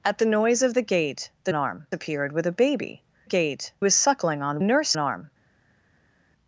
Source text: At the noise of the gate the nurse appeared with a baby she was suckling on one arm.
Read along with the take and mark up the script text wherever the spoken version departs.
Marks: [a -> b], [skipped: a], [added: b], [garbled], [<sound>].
At the noise of the gate the [nurse -> arm] appeared with a baby [she -> gate] was suckling on [one -> nurse] arm.